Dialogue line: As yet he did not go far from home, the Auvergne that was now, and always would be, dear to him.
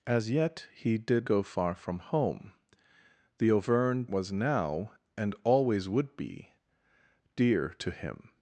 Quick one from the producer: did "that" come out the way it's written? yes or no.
no